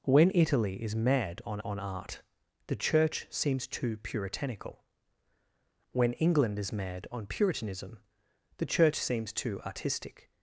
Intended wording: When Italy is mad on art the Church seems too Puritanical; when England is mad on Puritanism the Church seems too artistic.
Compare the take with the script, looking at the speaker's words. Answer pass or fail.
fail